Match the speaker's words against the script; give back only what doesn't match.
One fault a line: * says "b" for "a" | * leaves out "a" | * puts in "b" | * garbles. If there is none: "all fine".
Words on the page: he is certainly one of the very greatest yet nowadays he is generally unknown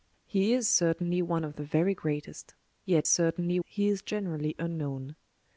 * says "certainly" for "nowadays"